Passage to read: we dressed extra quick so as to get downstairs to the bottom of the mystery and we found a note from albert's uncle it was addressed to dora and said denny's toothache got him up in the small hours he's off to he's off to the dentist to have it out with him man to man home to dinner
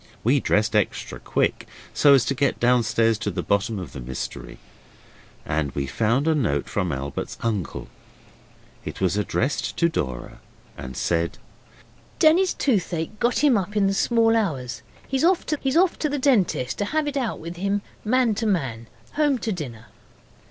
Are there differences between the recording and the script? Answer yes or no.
no